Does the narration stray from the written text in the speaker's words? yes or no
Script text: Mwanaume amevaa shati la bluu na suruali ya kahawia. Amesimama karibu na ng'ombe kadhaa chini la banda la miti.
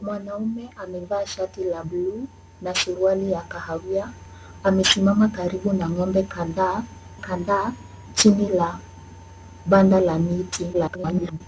yes